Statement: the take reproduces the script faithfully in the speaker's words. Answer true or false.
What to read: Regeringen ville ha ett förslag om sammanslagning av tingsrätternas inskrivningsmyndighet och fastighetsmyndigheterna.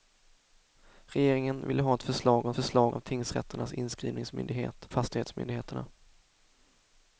false